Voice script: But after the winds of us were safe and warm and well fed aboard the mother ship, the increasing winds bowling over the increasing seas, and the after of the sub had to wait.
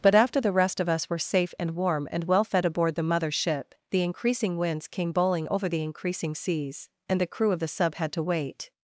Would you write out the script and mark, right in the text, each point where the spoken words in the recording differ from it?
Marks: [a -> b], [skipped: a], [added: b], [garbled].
But after the [winds -> rest] of us were safe and warm and well fed aboard the mother ship, the increasing winds [added: came] bowling over the increasing seas, and the [after -> crew] of the sub had to wait.